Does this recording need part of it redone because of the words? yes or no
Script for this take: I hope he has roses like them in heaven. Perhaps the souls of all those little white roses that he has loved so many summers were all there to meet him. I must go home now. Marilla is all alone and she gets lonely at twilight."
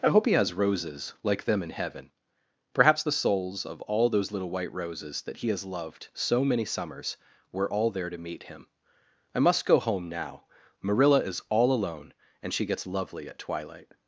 yes